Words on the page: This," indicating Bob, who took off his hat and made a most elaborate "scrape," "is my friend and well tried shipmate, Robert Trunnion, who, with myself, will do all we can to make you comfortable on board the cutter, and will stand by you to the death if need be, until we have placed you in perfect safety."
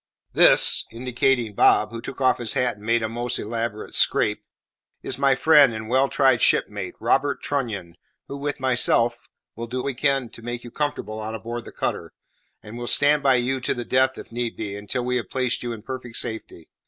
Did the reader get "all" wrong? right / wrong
wrong